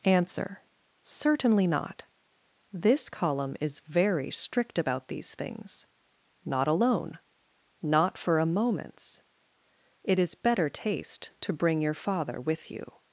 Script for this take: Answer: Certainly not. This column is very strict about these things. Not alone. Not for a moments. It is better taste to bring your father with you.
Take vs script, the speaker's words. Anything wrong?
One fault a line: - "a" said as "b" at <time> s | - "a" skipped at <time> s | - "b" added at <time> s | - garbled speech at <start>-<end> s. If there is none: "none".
none